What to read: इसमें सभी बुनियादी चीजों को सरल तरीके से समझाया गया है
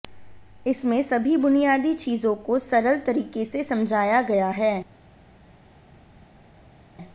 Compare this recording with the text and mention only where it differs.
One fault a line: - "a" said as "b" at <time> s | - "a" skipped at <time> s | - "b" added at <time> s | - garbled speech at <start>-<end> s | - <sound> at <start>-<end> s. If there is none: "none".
none